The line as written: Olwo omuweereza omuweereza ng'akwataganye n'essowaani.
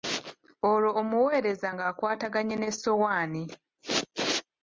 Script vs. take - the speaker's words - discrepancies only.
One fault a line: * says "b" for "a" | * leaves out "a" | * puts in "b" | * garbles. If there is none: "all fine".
* leaves out "omuweereza"